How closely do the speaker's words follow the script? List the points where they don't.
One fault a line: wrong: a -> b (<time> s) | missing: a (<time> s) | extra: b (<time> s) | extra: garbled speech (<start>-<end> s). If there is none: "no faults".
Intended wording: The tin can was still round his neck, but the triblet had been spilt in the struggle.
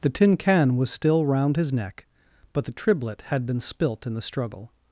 no faults